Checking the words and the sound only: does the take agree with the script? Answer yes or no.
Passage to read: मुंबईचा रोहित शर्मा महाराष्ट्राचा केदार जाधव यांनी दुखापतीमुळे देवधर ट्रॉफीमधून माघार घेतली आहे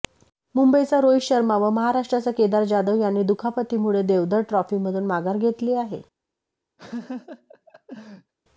no